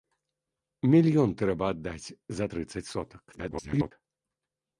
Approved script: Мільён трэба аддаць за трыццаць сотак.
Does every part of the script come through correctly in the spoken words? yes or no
no